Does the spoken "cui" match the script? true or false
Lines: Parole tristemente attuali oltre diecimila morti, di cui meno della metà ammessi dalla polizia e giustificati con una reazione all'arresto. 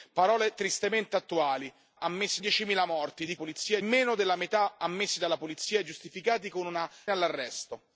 false